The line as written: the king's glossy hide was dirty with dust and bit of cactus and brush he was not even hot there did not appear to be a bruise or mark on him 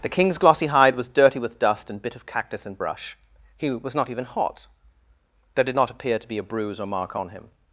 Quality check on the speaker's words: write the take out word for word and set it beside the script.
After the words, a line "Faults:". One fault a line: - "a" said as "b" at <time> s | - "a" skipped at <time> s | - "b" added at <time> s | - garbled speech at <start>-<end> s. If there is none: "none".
the king's glossy hide was dirty with dust and bit of cactus and brush he was not even hot there did not appear to be a bruise or mark on him
Faults:
none